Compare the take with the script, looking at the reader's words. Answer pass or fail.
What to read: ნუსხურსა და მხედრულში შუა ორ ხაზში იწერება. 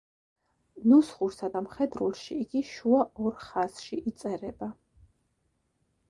fail